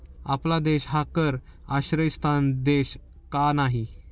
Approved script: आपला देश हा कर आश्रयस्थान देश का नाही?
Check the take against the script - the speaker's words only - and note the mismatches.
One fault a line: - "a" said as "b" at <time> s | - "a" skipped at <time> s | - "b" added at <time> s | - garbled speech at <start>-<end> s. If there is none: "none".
none